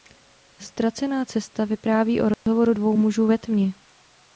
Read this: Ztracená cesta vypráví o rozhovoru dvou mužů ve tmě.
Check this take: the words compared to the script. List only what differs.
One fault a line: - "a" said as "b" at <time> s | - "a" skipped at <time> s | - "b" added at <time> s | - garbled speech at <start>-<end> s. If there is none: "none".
none